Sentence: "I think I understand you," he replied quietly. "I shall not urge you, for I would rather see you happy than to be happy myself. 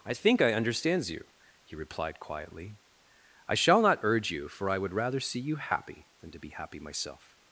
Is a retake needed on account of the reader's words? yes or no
yes